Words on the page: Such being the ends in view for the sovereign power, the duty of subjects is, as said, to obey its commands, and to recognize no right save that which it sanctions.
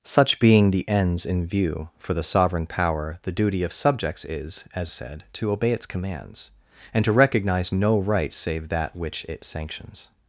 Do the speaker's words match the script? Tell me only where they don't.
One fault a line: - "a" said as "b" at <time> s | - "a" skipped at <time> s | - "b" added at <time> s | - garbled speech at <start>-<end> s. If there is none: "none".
none